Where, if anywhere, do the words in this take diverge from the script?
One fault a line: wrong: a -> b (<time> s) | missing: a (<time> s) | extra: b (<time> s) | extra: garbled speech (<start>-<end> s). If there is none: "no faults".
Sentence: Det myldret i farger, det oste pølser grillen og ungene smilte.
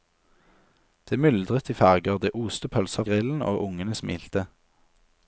no faults